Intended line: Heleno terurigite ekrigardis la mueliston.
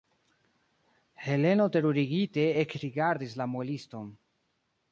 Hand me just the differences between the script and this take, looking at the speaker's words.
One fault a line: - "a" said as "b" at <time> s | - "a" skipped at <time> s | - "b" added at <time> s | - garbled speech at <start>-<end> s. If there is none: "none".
none